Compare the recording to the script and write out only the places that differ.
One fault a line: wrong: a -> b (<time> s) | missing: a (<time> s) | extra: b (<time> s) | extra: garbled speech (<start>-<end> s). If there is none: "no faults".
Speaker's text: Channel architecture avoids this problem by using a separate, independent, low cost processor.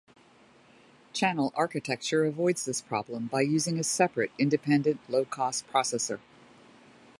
no faults